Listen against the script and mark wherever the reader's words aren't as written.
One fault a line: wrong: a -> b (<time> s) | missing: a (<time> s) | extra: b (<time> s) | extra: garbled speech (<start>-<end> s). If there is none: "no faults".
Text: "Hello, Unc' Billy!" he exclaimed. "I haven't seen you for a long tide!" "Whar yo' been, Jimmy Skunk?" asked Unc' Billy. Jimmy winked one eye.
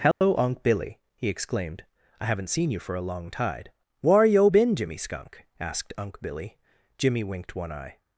no faults